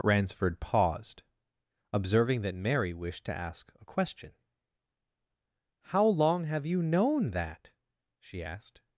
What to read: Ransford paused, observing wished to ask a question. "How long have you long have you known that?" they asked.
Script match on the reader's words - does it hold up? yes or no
no